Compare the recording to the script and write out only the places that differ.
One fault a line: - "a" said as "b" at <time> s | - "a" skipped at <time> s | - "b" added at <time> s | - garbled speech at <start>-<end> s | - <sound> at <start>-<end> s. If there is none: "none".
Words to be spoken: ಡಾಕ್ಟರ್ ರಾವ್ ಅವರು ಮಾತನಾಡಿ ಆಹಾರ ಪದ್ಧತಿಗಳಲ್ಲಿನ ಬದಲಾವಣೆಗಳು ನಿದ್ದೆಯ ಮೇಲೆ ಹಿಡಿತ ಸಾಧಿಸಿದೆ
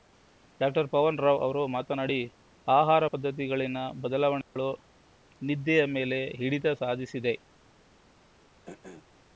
- "ಪವನ್" added at 0.9 s
- dropout at 4.4-4.6 s
- throat clearing at 8.7-9.1 s